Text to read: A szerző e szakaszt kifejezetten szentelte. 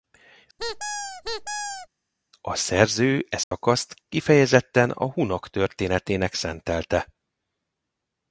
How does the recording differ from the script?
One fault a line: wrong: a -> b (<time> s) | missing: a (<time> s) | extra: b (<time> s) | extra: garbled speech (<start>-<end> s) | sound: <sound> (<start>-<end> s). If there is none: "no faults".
sound: squeak (0.6-1.9 s)
sound: dropout (3.4-3.5 s)
extra: a hunok történetének (4.9 s)